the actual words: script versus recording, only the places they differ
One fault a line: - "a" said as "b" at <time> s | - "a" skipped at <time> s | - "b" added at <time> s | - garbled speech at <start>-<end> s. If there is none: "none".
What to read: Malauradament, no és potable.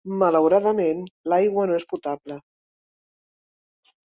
- "l'aigua" added at 1.3 s